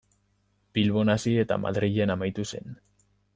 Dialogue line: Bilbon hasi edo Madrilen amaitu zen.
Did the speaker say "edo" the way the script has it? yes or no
no